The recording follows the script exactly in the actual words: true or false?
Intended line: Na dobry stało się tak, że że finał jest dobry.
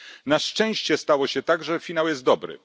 false